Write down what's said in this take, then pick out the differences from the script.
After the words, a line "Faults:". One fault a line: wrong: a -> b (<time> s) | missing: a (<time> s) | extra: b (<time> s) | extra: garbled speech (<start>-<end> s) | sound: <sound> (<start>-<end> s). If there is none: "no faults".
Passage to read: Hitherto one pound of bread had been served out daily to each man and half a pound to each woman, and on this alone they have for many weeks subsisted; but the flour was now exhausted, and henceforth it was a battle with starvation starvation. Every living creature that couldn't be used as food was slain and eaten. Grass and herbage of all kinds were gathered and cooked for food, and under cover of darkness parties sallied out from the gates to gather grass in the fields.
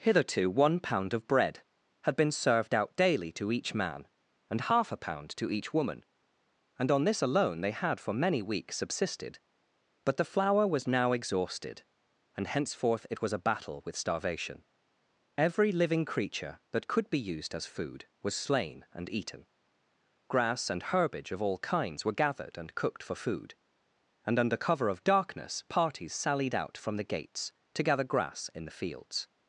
Hitherto one pound of bread had been served out daily to each man and half a pound to each woman, and on this alone they had for many weeks subsisted; but the flour was now exhausted, and henceforth it was a battle with starvation. Every living creature that could be used as food was slain and eaten. Grass and herbage of all kinds were gathered and cooked for food, and under cover of darkness parties sallied out from the gates to gather grass in the fields.
Faults:
wrong: have -> had (7.7 s)
missing: starvation (14.6 s)
wrong: couldn't -> could (16.9 s)